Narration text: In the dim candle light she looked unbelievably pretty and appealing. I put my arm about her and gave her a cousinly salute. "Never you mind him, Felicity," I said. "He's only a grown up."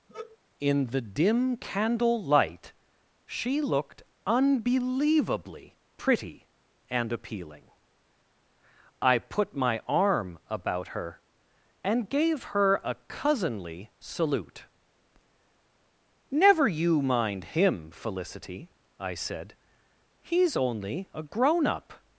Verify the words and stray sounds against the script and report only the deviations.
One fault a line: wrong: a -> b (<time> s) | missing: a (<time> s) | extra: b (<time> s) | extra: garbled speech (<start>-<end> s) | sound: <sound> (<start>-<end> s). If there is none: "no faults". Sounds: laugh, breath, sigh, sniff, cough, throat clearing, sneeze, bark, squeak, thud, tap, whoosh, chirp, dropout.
sound: sigh (0.1-0.4 s)